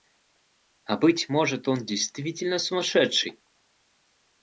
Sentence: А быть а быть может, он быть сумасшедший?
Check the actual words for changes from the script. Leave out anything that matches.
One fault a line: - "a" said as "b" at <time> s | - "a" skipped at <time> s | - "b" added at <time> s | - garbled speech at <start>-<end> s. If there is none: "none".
- "а быть" skipped at 1.3 s
- "быть" said as "действительно" at 1.9 s